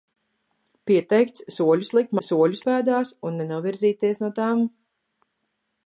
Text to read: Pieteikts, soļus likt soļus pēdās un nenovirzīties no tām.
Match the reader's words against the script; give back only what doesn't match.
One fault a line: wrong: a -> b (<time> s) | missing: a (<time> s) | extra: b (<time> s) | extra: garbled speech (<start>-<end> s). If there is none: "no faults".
no faults